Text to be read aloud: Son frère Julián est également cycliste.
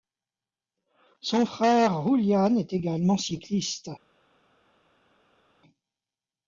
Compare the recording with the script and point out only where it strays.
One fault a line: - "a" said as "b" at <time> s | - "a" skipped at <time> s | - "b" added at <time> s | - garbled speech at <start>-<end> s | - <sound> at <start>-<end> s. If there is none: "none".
none